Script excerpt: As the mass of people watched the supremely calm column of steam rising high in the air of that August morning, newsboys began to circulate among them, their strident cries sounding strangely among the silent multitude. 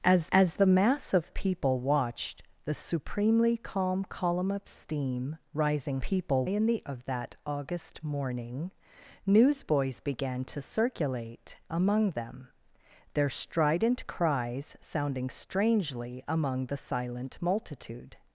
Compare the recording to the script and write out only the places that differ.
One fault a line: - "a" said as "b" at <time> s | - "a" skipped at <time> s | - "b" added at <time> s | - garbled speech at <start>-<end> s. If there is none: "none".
- "as" added at 0.3 s
- "high" said as "people" at 6.0 s
- "air" skipped at 6.8 s